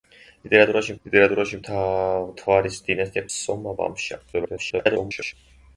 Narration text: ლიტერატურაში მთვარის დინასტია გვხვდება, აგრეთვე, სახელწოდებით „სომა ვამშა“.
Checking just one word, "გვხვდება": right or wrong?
wrong